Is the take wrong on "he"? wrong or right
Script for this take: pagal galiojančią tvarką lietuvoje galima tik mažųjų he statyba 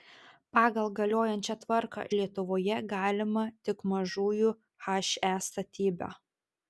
right